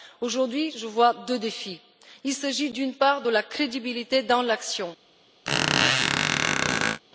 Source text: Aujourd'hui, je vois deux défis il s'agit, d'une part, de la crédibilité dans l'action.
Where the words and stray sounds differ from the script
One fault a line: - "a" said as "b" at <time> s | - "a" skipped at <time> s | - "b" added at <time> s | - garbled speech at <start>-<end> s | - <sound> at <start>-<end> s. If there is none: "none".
- squeak at 5.4-7.0 s